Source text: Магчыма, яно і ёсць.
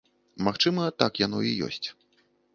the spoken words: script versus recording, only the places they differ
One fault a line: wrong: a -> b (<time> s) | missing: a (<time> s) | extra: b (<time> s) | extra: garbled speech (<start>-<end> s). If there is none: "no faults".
extra: так (1.0 s)